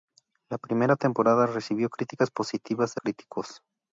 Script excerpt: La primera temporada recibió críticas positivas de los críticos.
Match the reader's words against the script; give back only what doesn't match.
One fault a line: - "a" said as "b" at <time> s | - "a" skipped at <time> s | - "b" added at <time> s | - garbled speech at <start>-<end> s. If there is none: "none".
- "los" skipped at 3.0 s